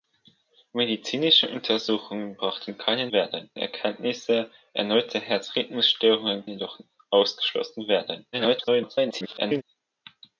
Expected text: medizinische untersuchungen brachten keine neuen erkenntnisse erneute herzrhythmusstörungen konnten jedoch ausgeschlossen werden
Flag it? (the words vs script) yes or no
yes